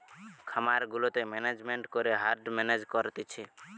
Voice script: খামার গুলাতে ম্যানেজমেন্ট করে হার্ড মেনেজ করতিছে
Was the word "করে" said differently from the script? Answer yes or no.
no